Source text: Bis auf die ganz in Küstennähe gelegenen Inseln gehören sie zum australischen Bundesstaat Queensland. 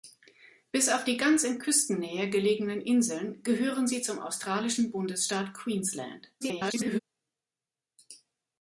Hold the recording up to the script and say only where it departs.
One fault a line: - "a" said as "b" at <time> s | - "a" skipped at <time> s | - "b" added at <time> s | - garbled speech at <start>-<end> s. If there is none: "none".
- garbled speech at 6.4-7.0 s